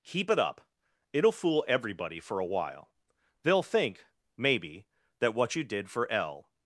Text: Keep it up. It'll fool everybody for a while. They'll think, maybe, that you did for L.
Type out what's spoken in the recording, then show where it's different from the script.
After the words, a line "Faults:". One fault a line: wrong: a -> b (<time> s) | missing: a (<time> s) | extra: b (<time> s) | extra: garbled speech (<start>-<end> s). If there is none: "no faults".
Keep it up. It'll fool everybody for a while. They'll think, maybe, that what you did for L.
Faults:
extra: what (5.3 s)